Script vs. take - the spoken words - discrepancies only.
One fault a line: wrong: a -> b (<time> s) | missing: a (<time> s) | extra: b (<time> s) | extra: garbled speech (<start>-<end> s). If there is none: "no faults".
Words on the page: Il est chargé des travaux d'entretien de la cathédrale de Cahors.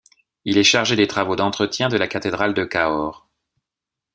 no faults